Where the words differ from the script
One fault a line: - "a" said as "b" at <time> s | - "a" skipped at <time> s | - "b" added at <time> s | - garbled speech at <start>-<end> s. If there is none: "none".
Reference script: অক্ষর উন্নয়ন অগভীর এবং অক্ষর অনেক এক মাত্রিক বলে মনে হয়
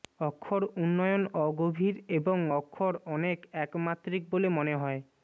none